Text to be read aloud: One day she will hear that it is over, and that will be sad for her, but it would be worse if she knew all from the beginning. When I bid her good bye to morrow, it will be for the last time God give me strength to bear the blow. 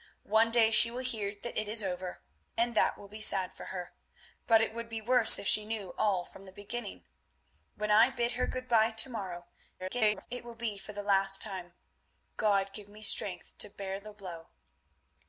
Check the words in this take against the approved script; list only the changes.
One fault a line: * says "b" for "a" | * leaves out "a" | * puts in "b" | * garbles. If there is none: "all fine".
* garbles